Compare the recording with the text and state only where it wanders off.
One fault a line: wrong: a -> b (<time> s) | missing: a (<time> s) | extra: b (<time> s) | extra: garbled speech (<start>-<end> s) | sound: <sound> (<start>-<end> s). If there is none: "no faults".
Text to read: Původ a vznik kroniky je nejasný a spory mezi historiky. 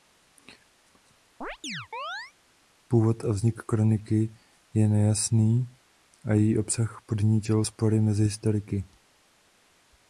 sound: chirp (1.4-2.3 s)
extra: její obsah podnítil (6.3 s)